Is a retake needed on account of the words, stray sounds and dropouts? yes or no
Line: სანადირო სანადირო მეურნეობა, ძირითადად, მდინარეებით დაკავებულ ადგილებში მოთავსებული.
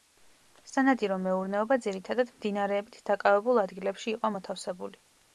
yes